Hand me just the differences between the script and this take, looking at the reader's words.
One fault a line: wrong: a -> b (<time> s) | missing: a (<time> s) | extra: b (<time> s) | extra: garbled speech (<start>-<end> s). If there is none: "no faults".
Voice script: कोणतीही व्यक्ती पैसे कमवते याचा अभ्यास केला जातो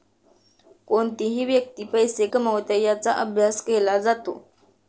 no faults